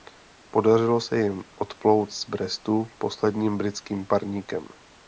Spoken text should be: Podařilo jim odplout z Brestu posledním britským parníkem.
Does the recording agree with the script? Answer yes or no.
no